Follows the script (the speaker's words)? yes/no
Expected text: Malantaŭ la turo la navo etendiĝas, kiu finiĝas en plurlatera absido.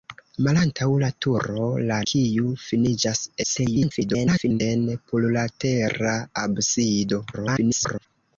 no